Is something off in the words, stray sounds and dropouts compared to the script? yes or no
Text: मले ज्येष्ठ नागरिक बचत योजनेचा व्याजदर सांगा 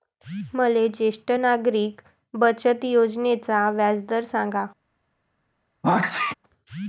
yes